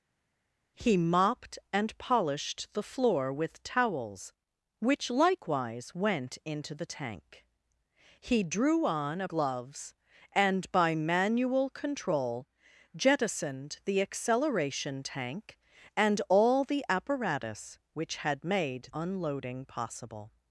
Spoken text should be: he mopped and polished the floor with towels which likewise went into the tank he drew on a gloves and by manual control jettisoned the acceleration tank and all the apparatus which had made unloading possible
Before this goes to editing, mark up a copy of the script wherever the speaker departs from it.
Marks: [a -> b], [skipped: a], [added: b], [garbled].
he mopped and polished the floor with towels which likewise went into the tank he drew on a gloves and by manual control jettisoned the acceleration tank and all the apparatus which had made unloading possible